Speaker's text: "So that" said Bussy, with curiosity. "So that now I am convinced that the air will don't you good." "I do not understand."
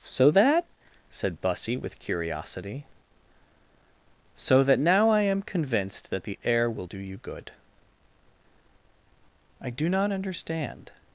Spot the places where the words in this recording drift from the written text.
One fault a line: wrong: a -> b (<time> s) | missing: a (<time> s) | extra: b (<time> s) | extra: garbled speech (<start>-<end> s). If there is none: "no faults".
wrong: don't -> do (6.8 s)